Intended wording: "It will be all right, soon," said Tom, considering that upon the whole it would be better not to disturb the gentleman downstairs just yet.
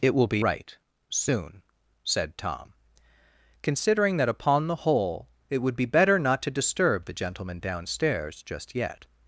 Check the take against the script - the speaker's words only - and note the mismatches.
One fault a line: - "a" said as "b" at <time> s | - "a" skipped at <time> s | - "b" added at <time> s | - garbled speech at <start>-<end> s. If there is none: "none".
- "all" skipped at 0.5 s